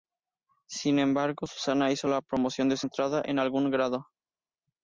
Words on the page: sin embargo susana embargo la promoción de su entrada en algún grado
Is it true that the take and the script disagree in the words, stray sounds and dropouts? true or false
true